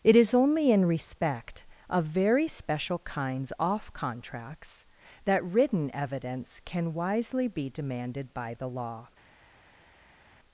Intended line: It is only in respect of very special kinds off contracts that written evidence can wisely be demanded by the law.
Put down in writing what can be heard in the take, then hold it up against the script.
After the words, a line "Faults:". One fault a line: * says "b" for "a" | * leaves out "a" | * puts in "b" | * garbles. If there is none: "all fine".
It is only in respect of very special kinds off contracts that written evidence can wisely be demanded by the law.
Faults:
all fine